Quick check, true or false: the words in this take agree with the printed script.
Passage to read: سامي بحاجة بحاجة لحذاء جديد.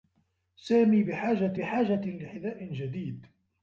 true